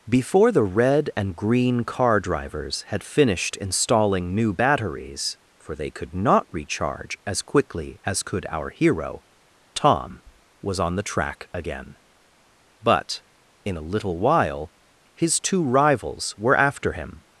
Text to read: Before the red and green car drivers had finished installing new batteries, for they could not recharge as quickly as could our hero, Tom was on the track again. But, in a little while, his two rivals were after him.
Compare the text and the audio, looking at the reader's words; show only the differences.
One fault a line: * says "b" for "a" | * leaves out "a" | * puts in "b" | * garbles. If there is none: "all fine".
all fine